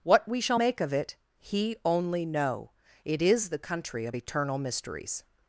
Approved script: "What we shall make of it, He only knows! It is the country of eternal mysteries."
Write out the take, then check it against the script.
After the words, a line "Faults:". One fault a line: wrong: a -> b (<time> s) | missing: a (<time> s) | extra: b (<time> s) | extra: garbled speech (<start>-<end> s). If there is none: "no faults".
"What we shall make of it, He only know! It is the country of eternal mysteries."
Faults:
wrong: knows -> know (2.2 s)